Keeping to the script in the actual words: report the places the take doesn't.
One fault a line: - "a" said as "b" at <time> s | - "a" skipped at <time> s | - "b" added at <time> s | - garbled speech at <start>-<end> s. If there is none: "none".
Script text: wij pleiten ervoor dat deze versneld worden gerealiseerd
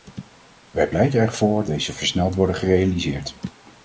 - "dat" skipped at 1.6 s